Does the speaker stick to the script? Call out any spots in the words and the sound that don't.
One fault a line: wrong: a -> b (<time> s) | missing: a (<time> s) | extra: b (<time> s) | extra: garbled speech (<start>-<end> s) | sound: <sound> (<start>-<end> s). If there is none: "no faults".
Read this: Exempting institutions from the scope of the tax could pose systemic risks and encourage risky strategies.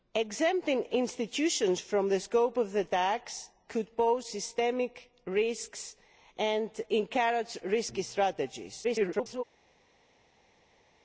extra: garbled speech (8.8-9.4 s)